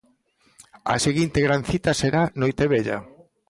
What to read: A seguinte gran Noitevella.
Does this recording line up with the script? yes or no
no